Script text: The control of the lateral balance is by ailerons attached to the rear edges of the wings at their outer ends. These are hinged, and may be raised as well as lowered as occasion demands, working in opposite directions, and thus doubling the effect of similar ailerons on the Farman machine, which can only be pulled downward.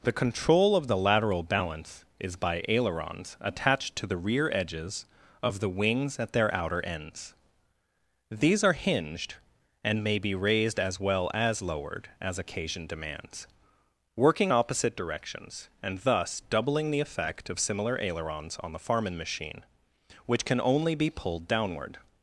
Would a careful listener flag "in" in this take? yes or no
yes